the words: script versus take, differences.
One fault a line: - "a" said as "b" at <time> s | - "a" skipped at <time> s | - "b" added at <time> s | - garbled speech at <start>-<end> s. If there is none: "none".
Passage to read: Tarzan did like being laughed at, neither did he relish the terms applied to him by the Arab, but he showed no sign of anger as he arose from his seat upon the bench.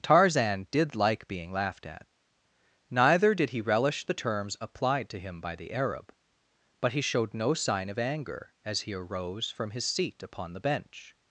none